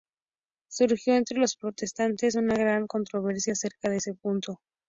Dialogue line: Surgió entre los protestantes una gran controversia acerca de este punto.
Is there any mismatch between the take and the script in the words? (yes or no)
no